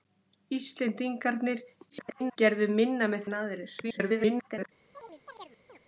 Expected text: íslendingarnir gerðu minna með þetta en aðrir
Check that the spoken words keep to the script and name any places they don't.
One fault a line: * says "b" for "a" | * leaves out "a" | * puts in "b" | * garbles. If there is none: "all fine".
* garbles
* leaves out "þetta"
* garbles